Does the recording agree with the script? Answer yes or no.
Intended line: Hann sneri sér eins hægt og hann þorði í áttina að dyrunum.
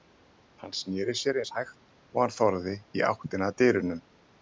yes